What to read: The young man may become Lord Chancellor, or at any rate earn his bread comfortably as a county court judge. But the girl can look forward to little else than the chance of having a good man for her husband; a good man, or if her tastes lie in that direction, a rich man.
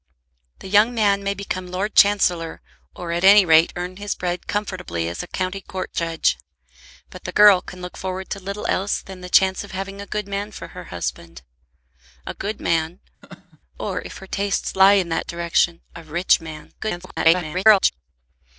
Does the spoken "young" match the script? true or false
true